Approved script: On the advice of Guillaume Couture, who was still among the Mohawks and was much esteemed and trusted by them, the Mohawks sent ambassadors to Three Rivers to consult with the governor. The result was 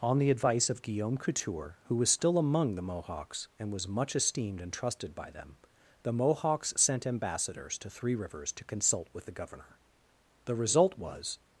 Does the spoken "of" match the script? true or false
true